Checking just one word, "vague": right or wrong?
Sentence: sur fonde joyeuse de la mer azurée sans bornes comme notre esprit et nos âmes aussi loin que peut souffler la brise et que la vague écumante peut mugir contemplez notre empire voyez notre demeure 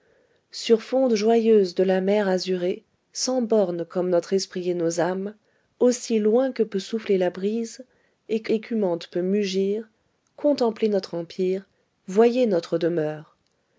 wrong